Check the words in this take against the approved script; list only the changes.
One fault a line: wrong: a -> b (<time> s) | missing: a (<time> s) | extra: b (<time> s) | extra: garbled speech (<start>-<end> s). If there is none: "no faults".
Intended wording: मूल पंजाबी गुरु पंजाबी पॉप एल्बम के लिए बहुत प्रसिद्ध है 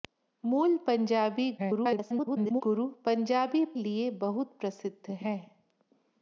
extra: garbled speech (1.6-2.6 s)
missing: पॉप एल्बम के (3.6 s)